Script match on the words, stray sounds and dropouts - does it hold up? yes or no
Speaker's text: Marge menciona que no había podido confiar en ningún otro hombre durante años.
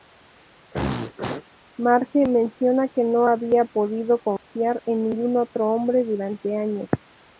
no